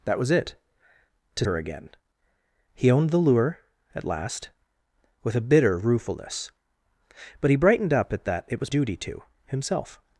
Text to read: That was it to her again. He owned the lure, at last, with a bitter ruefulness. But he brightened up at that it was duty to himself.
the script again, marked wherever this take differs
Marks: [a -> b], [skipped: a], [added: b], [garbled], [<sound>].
That was it to her again. He owned the lure, at last, with a bitter ruefulness. But he brightened up at that it was duty to himself.